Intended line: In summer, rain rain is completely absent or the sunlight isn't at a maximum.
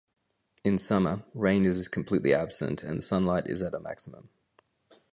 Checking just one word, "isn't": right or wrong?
wrong